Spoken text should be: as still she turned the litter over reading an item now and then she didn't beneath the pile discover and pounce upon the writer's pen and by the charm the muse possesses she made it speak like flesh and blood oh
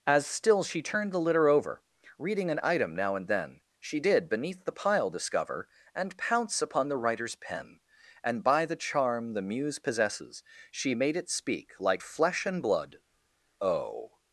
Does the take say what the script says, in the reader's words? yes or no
no